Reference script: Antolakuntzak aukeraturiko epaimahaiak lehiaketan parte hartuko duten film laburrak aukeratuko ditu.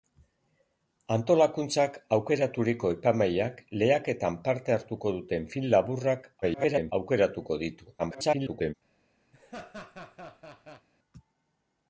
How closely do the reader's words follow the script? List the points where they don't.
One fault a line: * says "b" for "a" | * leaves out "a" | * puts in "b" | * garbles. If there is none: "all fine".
* garbles
* garbles